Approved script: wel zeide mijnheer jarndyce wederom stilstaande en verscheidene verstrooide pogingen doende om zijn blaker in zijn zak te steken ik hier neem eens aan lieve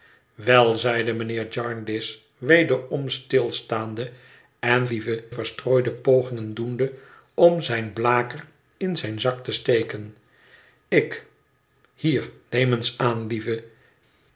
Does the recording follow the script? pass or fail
fail